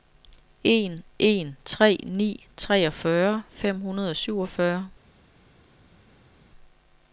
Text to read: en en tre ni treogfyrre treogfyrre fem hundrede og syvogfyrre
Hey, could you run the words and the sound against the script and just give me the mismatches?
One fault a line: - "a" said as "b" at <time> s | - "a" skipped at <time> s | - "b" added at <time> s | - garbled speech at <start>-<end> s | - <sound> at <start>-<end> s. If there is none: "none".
- "treogfyrre" skipped at 3.4 s